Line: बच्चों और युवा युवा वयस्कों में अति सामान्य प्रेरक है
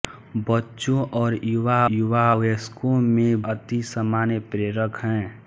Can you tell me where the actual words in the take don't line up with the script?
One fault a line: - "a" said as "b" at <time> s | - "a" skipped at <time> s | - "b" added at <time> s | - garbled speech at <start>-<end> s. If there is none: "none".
none